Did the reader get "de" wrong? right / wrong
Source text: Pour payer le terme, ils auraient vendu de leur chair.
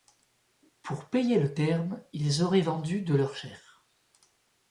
right